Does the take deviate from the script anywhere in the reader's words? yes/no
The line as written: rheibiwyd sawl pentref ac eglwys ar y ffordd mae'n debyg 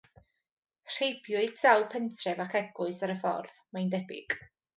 no